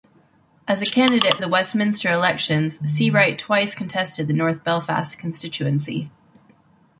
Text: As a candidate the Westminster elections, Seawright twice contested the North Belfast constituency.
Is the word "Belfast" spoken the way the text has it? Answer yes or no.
yes